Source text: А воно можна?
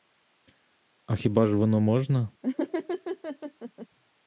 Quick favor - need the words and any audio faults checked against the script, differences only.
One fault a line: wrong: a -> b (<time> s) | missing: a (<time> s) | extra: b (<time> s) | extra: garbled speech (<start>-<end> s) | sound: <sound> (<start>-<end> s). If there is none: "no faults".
extra: хіба ж (1.1 s)
sound: laugh (2.4-3.9 s)